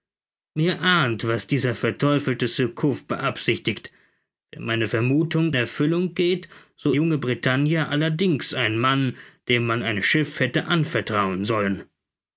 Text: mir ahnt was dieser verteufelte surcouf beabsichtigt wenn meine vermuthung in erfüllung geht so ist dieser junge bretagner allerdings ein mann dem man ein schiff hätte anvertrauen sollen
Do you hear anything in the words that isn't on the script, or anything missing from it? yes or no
yes